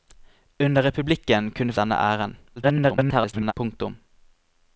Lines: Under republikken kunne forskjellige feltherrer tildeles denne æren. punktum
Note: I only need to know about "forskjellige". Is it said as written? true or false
false